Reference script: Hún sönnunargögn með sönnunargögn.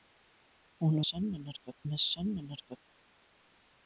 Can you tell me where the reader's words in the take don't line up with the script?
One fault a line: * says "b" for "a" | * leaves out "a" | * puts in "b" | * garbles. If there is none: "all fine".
all fine